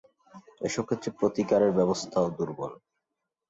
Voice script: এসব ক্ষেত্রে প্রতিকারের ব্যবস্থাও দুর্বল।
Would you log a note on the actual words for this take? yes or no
no